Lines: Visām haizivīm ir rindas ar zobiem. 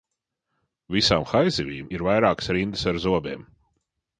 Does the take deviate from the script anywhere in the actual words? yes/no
yes